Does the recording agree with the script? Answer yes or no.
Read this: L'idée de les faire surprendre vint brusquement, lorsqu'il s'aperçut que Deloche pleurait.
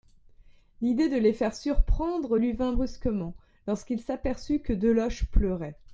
no